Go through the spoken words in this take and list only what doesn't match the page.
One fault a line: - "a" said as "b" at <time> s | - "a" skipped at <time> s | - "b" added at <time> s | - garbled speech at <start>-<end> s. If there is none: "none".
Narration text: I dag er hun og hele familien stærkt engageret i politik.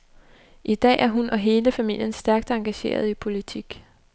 none